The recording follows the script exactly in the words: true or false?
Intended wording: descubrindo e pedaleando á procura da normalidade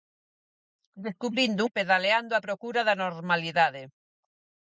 true